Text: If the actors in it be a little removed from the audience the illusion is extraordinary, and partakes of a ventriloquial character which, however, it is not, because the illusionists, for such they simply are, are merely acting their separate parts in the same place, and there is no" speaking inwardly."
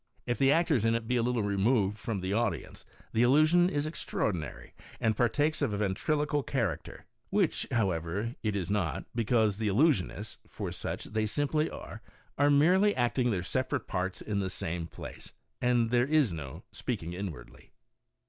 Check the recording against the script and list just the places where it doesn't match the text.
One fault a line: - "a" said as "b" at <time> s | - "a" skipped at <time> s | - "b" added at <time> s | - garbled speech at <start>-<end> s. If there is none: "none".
none